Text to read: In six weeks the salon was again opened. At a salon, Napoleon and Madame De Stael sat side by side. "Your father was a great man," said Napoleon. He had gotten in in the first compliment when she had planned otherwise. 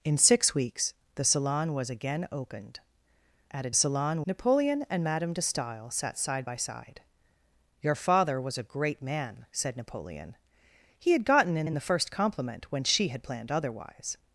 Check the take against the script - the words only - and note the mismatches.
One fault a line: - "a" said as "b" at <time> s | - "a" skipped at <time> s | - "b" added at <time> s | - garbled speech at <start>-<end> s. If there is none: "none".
none